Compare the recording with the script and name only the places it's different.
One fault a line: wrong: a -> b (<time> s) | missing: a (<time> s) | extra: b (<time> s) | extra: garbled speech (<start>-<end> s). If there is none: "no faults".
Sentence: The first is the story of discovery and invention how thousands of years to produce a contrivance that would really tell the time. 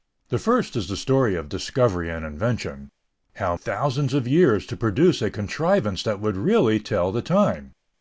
no faults